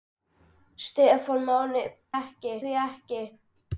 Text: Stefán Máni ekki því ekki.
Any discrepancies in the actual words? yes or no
no